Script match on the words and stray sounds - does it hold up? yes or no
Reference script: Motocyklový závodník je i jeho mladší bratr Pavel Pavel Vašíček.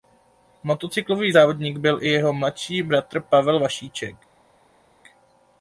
no